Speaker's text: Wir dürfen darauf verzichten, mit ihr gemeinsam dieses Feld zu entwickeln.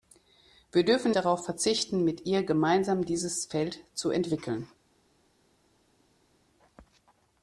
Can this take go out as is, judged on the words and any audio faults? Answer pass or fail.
pass